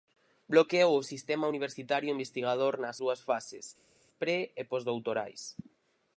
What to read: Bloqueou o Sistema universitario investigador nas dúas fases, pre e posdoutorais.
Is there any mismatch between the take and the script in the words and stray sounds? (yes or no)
no